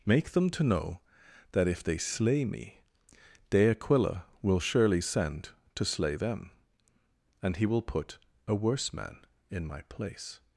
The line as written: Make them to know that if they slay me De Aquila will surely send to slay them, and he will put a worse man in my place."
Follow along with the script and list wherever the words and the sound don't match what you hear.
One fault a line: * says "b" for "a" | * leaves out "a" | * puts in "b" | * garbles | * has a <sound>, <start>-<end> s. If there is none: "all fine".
all fine